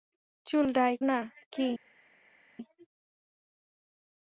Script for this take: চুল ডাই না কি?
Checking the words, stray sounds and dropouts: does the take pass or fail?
pass